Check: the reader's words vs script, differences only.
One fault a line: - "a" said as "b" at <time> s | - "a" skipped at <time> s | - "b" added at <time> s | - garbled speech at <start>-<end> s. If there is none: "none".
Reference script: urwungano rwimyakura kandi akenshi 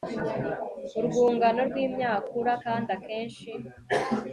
none